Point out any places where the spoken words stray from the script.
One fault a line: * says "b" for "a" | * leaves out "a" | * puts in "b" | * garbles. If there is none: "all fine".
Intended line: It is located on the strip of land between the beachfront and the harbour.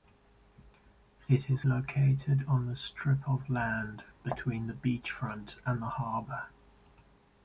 all fine